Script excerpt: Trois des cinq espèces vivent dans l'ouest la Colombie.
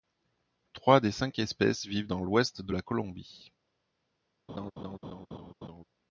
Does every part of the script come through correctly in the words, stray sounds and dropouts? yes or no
no